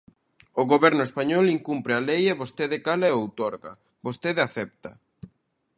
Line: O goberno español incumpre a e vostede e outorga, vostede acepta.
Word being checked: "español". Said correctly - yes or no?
yes